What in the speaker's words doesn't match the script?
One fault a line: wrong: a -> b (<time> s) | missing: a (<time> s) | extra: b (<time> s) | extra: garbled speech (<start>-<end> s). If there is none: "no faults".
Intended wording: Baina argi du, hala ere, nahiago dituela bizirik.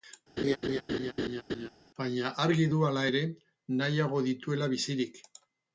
no faults